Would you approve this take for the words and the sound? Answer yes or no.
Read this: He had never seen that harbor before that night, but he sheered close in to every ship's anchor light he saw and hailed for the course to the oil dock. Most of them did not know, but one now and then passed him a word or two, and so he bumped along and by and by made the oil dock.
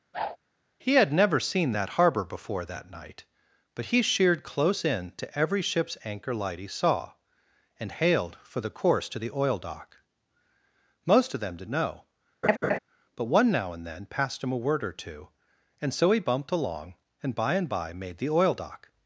no